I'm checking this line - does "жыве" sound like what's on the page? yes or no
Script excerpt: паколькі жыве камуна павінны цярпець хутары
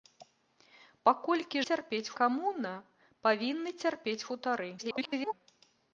no